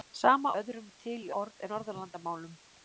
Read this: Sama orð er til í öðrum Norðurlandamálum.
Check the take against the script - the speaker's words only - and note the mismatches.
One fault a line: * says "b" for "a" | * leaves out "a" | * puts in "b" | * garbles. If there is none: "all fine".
* says "öðrum" for "orð"
* says "orð" for "öðrum"